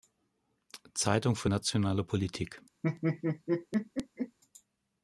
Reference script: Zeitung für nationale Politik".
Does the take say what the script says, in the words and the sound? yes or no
no